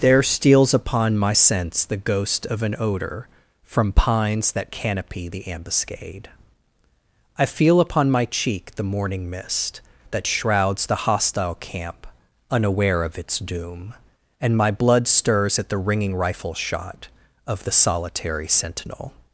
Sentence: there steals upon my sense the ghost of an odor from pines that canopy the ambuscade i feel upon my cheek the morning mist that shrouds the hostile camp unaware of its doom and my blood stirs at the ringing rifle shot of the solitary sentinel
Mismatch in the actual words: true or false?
false